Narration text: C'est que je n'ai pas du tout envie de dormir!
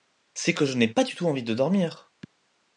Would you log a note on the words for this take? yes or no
no